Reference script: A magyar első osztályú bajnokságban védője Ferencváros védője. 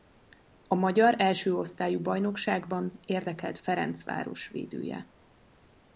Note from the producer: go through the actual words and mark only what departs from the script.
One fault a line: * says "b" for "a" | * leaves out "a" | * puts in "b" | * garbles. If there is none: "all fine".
* says "érdekelt" for "védője"